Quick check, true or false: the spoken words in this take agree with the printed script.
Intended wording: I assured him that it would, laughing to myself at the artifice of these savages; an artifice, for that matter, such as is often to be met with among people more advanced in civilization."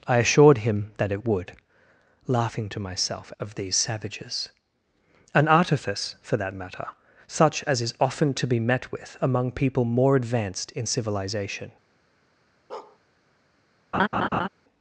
false